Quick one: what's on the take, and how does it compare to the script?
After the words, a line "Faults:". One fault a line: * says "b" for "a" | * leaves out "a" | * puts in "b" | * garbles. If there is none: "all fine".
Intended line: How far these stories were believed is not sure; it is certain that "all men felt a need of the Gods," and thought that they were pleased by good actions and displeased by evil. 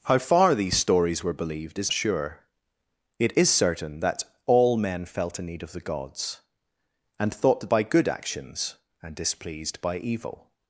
How far these stories were believed is sure; it is certain that "all men felt a need of the Gods," and thought that by good actions and displeased by evil.
Faults:
* leaves out "not"
* leaves out "they were pleased"